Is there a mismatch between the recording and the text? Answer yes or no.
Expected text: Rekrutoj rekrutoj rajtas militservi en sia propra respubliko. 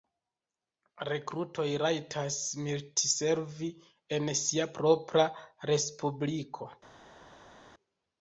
yes